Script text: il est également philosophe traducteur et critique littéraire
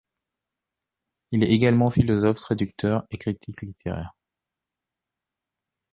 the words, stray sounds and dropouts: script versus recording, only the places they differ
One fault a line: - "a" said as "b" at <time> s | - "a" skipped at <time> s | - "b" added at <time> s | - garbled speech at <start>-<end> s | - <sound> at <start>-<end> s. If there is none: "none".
none